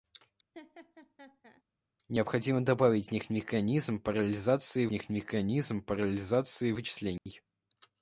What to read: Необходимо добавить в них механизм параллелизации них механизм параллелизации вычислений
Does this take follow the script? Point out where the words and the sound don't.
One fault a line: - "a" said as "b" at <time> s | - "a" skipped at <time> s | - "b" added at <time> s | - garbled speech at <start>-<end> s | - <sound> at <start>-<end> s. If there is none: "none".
- laugh at 0.5-1.6 s
- dropout at 7.2-7.3 s